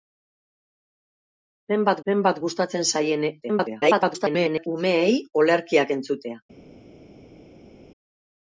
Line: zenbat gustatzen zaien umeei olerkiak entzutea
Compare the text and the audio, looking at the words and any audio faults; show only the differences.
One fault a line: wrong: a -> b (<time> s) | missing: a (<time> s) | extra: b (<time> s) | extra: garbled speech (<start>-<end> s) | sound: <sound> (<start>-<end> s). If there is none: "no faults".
extra: zenbat (2.1 s)
extra: garbled speech (3.4-4.7 s)